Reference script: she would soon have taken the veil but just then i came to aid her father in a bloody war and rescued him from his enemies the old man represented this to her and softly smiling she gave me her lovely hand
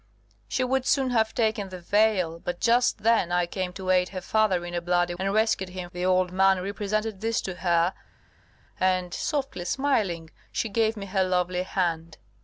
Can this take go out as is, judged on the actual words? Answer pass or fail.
fail